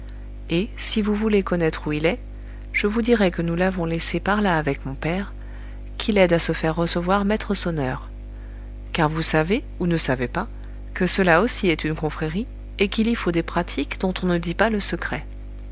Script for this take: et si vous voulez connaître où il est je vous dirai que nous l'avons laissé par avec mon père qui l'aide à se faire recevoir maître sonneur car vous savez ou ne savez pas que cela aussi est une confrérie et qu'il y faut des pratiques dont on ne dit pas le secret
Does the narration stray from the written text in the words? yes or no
yes